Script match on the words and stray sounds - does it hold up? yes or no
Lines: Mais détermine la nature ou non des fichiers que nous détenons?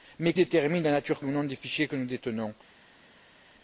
yes